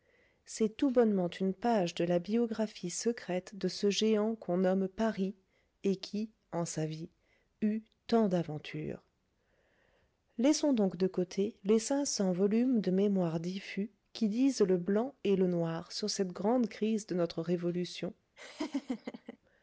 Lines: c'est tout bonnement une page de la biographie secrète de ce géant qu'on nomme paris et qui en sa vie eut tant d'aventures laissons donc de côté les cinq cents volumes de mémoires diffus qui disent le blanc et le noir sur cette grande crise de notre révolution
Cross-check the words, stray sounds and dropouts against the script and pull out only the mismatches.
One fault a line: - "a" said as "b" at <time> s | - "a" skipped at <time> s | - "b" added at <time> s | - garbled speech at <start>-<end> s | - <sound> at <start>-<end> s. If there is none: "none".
- laugh at 18.4-19.4 s